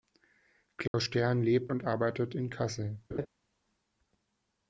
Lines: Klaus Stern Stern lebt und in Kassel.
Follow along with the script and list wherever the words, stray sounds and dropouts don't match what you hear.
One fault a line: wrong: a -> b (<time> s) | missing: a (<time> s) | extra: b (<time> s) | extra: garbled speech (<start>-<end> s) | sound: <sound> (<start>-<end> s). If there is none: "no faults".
sound: dropout (0.9-0.9 s)
missing: Stern (1.4 s)
extra: arbeitet (1.9 s)
sound: laugh (3.1-3.3 s)